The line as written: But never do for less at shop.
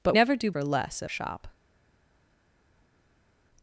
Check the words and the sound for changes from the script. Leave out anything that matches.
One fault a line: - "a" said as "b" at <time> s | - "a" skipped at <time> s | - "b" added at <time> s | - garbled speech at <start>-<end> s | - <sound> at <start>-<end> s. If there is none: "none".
none